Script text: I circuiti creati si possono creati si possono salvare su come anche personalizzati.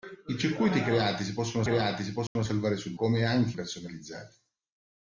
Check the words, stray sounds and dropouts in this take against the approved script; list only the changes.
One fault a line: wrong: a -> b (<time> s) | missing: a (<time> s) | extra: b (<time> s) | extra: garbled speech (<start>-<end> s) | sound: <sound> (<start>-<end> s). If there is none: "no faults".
sound: dropout (2.3-2.4 s)